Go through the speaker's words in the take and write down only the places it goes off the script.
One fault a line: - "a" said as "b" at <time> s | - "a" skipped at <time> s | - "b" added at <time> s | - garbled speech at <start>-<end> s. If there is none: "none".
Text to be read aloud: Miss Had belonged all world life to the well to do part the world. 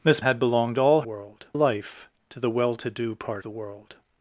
none